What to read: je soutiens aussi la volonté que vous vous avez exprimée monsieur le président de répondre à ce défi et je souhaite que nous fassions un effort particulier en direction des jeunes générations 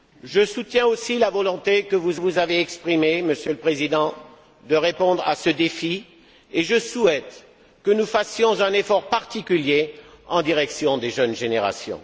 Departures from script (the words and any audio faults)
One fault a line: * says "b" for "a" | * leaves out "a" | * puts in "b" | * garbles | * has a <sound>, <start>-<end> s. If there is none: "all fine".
all fine